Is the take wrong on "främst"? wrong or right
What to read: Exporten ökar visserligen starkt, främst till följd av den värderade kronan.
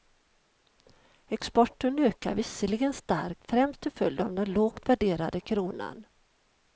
right